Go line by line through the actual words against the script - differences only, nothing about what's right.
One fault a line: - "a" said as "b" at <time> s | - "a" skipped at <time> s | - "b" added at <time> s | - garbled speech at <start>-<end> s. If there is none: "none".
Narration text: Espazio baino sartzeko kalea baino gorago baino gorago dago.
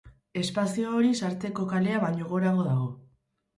- "baino" said as "hori" at 1.0 s
- "baino gorago" skipped at 2.7 s